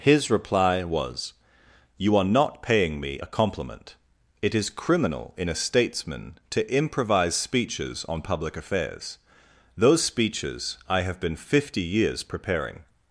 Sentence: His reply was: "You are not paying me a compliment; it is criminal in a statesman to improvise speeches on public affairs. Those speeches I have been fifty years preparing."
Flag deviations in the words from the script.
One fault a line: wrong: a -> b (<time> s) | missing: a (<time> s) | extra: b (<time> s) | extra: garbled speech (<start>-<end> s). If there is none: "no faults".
no faults